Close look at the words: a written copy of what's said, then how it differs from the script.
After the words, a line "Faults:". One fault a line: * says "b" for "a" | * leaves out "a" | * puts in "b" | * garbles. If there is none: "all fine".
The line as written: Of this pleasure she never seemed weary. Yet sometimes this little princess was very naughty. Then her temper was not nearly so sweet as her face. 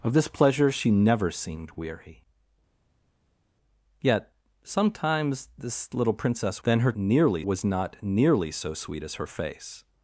Of this pleasure she never seemed weary. Yet sometimes this little princess. Then her nearly was not nearly so sweet as her face.
Faults:
* leaves out "was very naughty"
* says "nearly" for "temper"